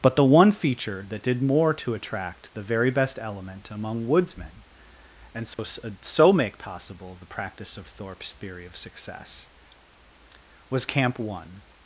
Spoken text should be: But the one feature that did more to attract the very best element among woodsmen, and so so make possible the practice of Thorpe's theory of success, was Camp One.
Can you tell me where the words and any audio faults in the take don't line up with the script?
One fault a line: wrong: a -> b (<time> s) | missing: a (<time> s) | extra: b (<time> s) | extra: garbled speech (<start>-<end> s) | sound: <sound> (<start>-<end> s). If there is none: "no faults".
sound: dropout (5.5-5.6 s)